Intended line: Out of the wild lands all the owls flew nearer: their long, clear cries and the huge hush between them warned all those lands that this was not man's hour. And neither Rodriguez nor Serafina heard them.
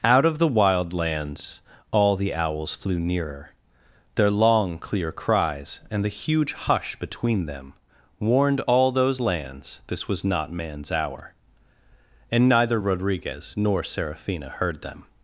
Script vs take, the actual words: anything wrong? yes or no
yes